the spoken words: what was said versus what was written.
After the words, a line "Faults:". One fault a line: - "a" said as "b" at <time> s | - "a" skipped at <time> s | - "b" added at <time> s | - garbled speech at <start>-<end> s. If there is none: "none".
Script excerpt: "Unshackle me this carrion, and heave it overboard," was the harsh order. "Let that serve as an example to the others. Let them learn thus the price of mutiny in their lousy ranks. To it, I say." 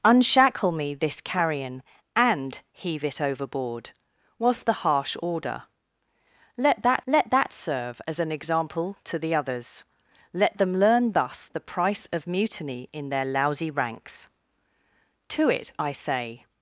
"Unshackle me this carrion, and heave it overboard," was the harsh order. "Let that let that serve as an example to the others. Let them learn thus the price of mutiny in their lousy ranks. To it, I say."
Faults:
- "let that" added at 7.1 s